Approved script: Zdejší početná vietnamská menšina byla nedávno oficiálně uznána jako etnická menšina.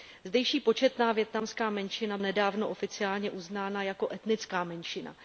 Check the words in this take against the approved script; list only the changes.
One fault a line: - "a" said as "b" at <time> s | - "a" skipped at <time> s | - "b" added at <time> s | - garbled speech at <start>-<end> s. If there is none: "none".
- "byla" skipped at 2.2 s